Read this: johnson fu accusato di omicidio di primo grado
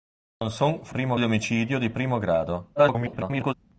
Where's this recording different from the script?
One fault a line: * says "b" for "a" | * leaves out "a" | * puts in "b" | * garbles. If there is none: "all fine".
* says "primo" for "accusato"
* garbles